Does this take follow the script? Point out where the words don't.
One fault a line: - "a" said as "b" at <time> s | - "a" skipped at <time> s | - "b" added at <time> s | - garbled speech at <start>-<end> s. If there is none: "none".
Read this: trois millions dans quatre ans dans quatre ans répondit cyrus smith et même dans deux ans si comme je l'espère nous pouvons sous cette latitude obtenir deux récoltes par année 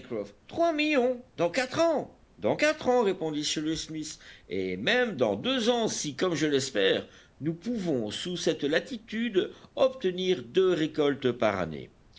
none